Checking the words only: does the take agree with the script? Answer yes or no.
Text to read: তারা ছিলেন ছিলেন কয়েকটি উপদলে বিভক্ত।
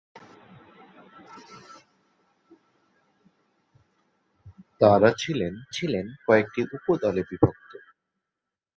yes